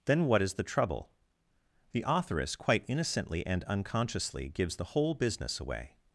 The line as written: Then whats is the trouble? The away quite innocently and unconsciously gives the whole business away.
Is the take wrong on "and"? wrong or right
right